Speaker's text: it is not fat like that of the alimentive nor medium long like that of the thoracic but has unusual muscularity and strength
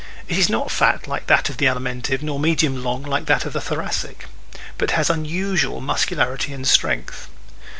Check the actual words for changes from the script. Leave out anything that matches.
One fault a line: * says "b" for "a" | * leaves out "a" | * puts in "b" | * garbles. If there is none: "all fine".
all fine